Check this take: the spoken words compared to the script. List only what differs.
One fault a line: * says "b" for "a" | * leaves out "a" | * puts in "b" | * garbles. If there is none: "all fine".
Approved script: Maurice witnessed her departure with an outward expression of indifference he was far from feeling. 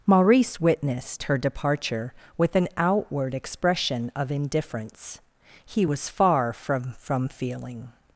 * puts in "from"